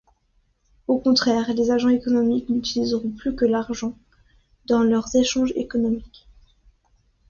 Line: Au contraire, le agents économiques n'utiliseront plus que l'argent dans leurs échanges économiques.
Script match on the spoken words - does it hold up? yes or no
no